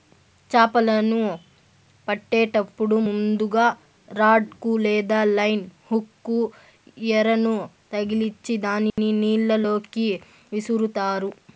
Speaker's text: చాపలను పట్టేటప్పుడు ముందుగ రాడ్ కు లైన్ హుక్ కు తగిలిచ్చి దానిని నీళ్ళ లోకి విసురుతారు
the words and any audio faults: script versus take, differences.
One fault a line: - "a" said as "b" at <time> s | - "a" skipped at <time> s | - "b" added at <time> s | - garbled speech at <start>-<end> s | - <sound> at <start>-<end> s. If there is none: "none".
- "లేదా" added at 4.8 s
- "ఎరను" added at 7.1 s
- dropout at 8.9-9.0 s